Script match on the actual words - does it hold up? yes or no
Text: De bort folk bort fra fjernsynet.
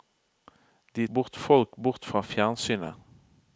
yes